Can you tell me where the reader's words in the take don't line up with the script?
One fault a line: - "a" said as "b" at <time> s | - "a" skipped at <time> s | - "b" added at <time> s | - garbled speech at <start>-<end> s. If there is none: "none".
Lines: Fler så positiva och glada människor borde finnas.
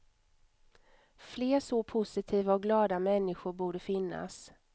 none